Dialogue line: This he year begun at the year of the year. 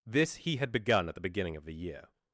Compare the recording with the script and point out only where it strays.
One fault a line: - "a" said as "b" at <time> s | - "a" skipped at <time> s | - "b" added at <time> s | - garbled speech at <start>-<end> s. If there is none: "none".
- "year" said as "had" at 0.6 s
- "year" said as "beginning" at 1.2 s